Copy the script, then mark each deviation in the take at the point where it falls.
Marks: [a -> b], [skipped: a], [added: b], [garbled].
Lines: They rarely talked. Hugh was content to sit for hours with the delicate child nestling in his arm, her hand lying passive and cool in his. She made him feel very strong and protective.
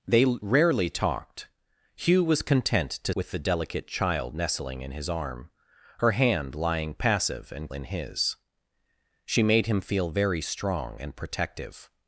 They rarely talked. Hugh was content to [skipped: sit for hours] with the delicate child nestling in his arm, her hand lying passive and [skipped: cool] in his. She made him feel very strong and protective.